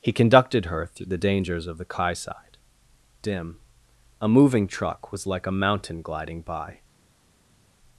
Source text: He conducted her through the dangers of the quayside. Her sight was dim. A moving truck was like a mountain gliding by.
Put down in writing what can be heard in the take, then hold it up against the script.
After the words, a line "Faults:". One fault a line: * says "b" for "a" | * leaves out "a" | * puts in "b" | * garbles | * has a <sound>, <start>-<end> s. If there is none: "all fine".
He conducted her through the dangers of the quayside. Dim. A moving truck was like a mountain gliding by.
Faults:
* leaves out "Her sight was"